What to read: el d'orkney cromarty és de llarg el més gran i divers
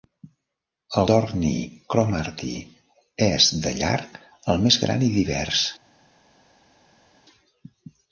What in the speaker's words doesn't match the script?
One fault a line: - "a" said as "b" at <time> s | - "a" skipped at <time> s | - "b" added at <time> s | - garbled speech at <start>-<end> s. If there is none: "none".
none